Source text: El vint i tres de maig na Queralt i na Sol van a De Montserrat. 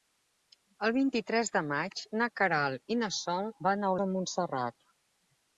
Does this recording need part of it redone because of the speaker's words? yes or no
no